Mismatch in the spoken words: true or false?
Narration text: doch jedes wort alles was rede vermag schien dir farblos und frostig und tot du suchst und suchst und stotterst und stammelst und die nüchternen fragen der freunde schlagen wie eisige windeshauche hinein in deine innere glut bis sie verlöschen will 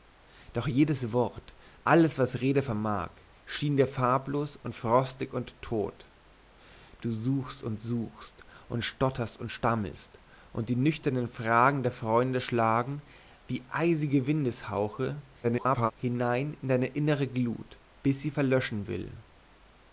true